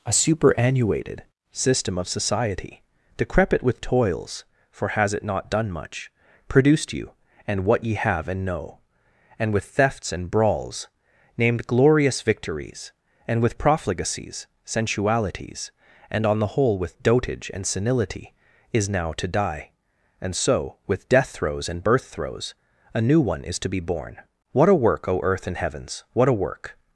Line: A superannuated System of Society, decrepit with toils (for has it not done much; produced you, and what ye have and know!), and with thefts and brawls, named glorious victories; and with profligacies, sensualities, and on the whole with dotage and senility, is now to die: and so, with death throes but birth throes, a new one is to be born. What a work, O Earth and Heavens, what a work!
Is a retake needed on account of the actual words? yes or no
yes